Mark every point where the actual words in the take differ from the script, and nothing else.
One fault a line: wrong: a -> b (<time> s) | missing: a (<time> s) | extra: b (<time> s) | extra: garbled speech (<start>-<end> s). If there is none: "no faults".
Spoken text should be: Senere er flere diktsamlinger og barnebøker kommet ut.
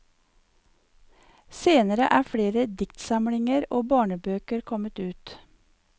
no faults